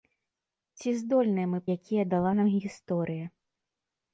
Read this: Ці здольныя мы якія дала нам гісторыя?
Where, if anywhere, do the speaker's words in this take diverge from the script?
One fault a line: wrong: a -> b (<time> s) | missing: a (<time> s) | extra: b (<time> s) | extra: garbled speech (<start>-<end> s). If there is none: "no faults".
no faults